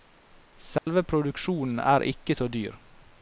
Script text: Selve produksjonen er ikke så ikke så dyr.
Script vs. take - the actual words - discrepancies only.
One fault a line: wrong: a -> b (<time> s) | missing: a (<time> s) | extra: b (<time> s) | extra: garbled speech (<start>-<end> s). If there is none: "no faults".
missing: ikke så (2.5 s)